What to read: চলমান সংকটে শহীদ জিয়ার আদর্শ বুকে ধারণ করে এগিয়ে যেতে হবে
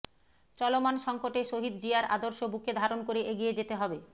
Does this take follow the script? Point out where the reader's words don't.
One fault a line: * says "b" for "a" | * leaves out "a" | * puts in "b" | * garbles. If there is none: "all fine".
all fine